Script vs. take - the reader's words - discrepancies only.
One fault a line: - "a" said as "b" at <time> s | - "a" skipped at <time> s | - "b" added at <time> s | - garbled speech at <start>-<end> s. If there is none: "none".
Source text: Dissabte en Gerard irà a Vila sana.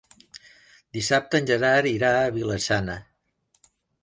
none